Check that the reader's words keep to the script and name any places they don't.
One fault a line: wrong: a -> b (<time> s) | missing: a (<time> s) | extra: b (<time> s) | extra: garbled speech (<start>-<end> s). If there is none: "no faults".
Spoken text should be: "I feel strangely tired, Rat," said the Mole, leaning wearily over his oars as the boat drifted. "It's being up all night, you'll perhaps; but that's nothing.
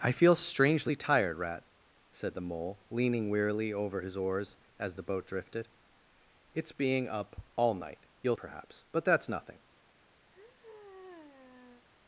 no faults